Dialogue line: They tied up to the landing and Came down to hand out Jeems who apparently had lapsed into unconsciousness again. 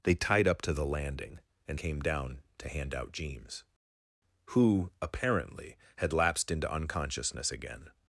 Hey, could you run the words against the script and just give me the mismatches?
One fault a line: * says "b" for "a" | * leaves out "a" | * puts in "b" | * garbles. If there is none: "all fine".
all fine